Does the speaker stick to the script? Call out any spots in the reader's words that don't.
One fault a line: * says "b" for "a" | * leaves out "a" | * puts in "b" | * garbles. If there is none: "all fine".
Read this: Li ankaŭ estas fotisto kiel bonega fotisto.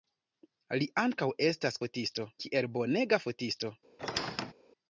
all fine